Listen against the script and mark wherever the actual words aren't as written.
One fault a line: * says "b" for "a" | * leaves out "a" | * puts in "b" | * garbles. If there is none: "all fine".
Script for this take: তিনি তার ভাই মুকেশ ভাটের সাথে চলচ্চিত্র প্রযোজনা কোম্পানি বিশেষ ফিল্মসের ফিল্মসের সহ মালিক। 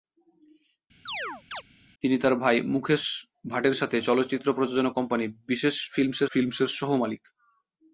all fine